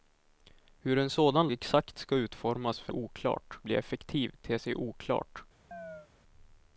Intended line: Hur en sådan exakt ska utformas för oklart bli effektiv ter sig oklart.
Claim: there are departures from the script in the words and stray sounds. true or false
true